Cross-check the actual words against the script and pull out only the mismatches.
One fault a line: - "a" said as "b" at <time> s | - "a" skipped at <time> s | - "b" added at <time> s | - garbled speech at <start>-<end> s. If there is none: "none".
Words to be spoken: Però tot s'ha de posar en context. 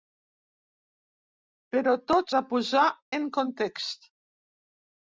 - "s'ha" skipped at 2.3 s